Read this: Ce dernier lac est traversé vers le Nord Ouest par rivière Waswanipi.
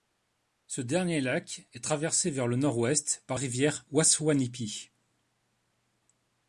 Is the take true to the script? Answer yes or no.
yes